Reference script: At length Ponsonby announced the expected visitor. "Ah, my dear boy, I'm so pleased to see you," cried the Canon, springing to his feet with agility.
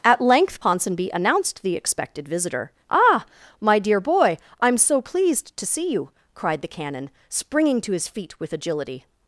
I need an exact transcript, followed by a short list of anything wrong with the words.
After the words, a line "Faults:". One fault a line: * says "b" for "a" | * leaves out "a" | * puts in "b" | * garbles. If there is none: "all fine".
At length Ponsonby announced the expected visitor. "Ah, my dear boy, I'm so pleased to see you," cried the Canon, springing to his feet with agility.
Faults:
all fine